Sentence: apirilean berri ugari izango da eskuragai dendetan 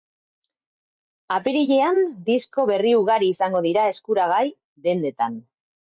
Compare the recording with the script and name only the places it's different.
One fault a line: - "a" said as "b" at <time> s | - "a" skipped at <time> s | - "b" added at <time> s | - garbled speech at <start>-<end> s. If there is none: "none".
- "disko" added at 2.3 s
- "da" said as "dira" at 3.7 s